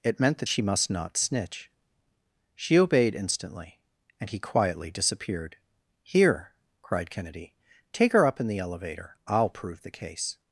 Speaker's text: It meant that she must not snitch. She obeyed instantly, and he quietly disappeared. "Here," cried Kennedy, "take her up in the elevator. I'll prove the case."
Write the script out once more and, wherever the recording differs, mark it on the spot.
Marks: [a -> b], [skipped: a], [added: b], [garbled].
It meant that she must not snitch. She obeyed instantly, and he quietly disappeared. "Here," cried Kennedy, "take her up in the elevator. I'll prove the case."